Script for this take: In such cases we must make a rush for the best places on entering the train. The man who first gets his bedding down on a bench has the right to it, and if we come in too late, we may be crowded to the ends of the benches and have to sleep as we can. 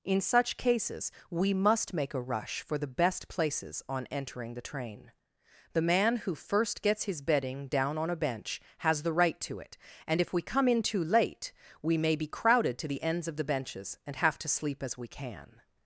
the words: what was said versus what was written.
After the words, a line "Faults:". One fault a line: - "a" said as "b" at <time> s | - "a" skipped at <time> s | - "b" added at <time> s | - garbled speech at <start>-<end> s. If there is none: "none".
In such cases we must make a rush for the best places on entering the train. The man who first gets his bedding down on a bench has the right to it, and if we come in too late, we may be crowded to the ends of the benches and have to sleep as we can.
Faults:
none